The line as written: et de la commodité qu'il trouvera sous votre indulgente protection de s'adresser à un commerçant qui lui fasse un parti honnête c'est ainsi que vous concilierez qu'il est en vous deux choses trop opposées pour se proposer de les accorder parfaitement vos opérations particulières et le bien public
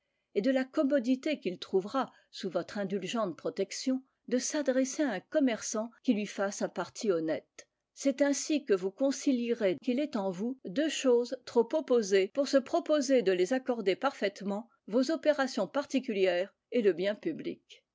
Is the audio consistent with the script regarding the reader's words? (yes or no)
yes